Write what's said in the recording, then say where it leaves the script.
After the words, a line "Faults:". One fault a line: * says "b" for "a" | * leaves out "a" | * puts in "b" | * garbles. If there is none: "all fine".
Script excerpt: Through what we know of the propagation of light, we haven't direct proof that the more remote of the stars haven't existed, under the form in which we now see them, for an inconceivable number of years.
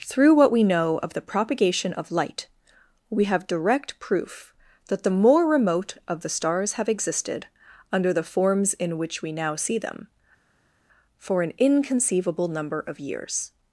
Through what we know of the propagation of light, we have direct proof that the more remote of the stars have existed, under the forms in which we now see them, for an inconceivable number of years.
Faults:
* says "have" for "haven't"
* says "have" for "haven't"
* says "forms" for "form"